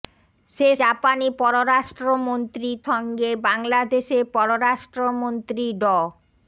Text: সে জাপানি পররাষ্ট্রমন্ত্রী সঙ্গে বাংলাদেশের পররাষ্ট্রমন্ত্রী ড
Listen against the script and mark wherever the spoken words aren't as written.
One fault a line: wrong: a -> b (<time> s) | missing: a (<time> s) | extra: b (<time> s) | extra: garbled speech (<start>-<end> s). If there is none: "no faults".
no faults